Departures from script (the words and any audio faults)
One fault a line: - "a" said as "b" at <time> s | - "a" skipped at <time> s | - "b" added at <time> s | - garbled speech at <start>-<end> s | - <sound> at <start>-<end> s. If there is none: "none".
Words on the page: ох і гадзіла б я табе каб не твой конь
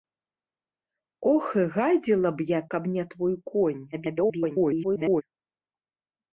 - "табе" skipped at 2.6 s
- garbled speech at 3.9-5.2 s